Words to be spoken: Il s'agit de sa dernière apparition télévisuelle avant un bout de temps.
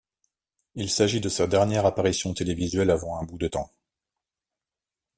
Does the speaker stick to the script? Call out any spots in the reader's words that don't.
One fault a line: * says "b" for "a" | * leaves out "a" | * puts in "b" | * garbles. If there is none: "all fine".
all fine